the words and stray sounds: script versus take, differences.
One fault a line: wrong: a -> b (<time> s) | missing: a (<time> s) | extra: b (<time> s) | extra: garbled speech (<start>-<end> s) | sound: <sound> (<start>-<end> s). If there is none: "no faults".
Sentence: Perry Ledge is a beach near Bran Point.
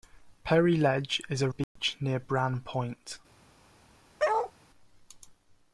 sound: dropout (1.6-1.8 s)
sound: bark (4.2-4.5 s)